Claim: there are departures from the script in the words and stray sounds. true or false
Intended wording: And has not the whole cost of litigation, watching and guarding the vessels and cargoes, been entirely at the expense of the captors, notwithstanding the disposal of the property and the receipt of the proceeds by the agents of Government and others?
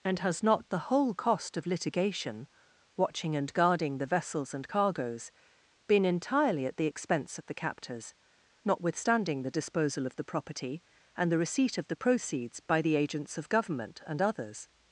false